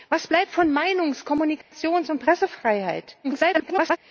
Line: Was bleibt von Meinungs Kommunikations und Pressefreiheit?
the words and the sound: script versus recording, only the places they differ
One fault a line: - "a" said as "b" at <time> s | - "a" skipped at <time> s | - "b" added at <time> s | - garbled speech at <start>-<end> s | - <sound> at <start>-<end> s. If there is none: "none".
- dropout at 1.6-1.7 s
- garbled speech at 3.2-4.0 s